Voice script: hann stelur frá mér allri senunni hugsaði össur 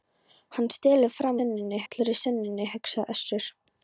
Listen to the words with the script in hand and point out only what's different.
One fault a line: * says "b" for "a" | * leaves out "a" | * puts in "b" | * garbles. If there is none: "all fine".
* says "senunni" for "mér"